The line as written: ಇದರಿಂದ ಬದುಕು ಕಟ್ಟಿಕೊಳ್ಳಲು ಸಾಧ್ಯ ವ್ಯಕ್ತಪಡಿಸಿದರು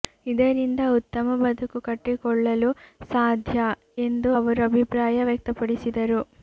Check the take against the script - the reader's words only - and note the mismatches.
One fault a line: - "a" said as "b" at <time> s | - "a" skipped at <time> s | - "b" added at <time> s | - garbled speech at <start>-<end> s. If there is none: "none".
- "ಉತ್ತಮ" added at 0.9 s
- "ಎಂದು ಅವರು ಅಭಿಪ್ರಾಯ" added at 4.0 s